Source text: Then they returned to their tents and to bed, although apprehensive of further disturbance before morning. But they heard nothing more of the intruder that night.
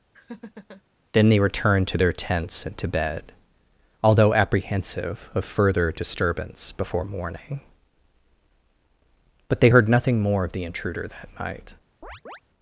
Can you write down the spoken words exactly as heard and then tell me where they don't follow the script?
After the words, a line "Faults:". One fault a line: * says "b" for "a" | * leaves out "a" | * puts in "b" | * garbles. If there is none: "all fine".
Then they returned to their tents and to bed, although apprehensive of further disturbance before morning. But they heard nothing more of the intruder that night.
Faults:
all fine